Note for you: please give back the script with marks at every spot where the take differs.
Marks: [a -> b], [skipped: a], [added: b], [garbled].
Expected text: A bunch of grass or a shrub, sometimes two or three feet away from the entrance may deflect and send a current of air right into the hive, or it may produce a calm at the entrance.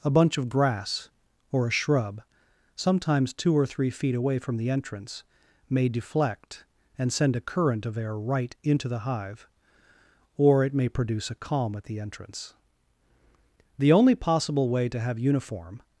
A bunch of grass or a shrub, sometimes two or three feet away from the entrance may deflect and send a current of air right into the hive, or it may produce a calm at the entrance. [added: The only possible way to have uniform]